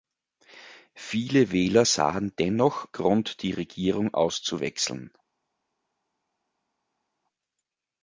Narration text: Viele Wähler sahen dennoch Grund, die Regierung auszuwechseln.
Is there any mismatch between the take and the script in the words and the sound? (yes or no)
no